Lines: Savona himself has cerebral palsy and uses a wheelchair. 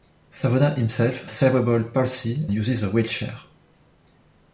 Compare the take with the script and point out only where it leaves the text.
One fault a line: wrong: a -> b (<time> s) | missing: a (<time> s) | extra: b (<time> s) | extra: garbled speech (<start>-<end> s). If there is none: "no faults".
missing: has (1.2 s)
missing: and (2.4 s)